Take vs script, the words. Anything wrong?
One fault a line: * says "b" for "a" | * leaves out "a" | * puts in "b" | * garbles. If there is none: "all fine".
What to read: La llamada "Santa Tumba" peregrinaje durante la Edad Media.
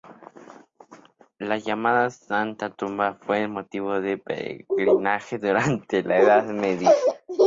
* puts in "fue motivo de"